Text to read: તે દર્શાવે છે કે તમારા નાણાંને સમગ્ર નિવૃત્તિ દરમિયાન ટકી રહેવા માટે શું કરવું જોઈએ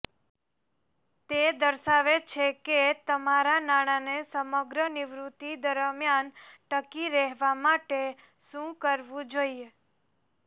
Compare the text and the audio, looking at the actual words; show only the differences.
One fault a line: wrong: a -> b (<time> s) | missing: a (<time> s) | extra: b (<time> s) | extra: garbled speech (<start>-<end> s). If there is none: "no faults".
no faults